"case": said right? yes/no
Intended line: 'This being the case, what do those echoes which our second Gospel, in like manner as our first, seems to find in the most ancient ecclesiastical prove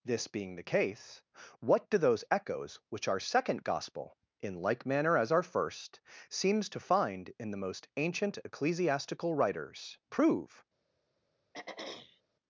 yes